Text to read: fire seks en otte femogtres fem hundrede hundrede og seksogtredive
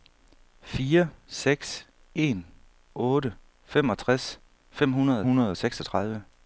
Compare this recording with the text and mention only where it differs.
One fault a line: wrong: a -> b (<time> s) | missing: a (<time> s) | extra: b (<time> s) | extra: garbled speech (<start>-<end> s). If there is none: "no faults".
no faults